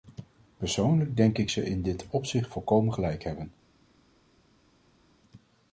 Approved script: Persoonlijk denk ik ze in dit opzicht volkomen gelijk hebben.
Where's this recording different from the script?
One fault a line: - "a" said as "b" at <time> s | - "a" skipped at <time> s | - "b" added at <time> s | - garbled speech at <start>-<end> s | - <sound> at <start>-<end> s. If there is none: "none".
none